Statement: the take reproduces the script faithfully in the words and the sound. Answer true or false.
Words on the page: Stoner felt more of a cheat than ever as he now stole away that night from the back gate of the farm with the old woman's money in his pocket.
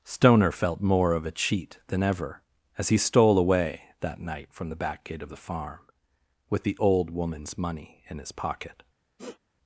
false